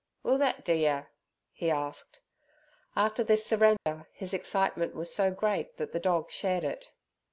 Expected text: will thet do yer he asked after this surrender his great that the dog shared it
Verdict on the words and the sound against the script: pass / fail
fail